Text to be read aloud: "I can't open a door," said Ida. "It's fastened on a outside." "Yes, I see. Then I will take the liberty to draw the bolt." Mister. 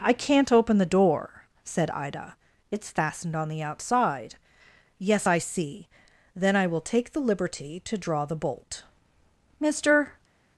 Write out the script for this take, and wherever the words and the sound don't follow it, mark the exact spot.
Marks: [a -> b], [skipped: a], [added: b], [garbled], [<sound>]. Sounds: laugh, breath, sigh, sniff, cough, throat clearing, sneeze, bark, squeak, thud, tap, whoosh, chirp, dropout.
"I can't open [a -> the] door," said Ida. "It's fastened on [a -> the] outside." "Yes, I see. Then I will take the liberty to draw the bolt." Mister.